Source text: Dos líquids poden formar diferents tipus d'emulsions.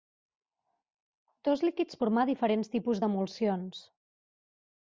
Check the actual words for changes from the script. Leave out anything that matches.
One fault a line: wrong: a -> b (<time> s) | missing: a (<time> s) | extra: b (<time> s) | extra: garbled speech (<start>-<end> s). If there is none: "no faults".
missing: poden (2.0 s)